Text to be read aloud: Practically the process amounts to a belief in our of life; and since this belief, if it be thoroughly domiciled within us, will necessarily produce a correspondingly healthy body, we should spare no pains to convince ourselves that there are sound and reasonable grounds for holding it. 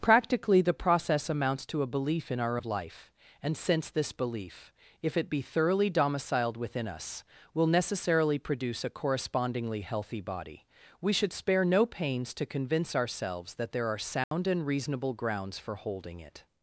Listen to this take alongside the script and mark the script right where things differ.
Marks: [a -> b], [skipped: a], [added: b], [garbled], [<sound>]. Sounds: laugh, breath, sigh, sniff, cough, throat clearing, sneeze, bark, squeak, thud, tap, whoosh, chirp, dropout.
Practically the process amounts to a belief in our of life; and since this belief, if it be thoroughly domiciled within us, will necessarily produce a correspondingly healthy body, we should spare no pains to convince ourselves that there are sound [dropout] and reasonable grounds for holding it.